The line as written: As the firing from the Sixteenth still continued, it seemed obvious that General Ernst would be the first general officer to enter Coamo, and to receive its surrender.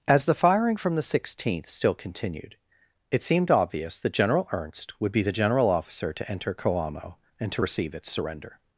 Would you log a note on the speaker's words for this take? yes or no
yes